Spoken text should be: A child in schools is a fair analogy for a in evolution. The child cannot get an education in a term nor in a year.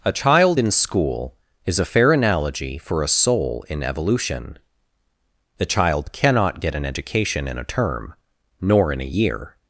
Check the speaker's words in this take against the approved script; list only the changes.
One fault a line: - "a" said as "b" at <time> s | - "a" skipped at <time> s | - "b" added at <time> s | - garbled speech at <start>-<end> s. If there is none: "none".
- "schools" said as "school" at 0.7 s
- "soul" added at 3.1 s